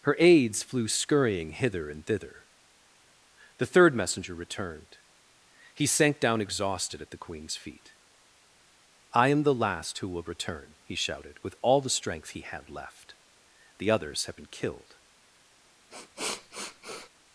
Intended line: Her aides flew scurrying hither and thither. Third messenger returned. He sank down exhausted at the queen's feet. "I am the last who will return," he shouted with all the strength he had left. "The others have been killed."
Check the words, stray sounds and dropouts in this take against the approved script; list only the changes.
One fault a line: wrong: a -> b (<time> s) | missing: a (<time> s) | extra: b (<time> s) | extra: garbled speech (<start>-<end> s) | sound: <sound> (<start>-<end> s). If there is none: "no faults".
extra: The (3.6 s)
sound: sniff (15.9-17.1 s)